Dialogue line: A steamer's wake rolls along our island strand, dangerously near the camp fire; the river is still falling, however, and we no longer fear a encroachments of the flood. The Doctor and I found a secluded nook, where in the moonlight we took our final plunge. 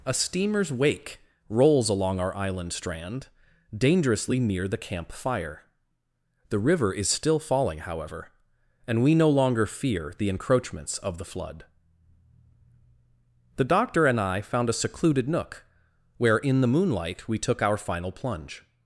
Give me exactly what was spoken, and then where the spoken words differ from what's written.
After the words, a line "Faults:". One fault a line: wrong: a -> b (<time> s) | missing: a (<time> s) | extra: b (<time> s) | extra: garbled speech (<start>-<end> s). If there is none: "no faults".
A steamer's wake rolls along our island strand, dangerously near the camp fire; the river is still falling, however, and we no longer fear the encroachments of the flood. The Doctor and I found a secluded nook, where in the moonlight we took our final plunge.
Faults:
wrong: a -> the (10.2 s)